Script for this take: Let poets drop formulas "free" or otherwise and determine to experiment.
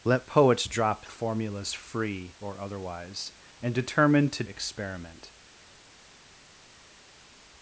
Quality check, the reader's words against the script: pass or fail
pass